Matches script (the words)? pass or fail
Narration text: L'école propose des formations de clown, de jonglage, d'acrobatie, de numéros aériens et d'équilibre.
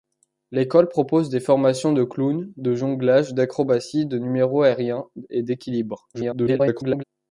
fail